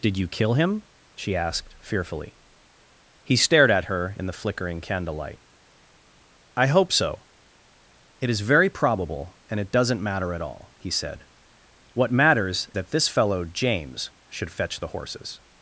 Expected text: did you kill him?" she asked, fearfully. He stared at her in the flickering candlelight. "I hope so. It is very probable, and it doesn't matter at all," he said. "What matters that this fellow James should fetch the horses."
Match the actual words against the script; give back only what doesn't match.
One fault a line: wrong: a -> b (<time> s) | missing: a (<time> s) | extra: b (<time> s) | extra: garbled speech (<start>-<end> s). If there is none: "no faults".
no faults